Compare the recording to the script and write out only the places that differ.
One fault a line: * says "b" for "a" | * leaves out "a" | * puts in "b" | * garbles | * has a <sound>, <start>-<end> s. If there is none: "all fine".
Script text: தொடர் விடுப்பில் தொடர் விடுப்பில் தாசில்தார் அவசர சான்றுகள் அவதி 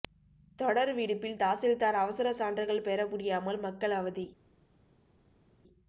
* leaves out "தொடர் விடுப்பில்"
* puts in "பெற முடியாமல் மக்கள்"